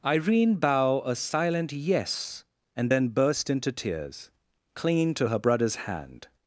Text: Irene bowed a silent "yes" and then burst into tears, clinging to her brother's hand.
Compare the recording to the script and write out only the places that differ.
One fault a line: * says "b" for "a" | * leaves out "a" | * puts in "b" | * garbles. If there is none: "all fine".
* says "bow" for "bowed"